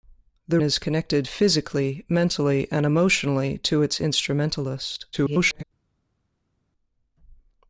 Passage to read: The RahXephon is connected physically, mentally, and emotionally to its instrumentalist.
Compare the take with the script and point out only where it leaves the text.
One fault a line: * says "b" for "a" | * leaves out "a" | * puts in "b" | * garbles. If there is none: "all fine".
* leaves out "RahXephon"
* garbles